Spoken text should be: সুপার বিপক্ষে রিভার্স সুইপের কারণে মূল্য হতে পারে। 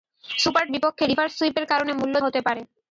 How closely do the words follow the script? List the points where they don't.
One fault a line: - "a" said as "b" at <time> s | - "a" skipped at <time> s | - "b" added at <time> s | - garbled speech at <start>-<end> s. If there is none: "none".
none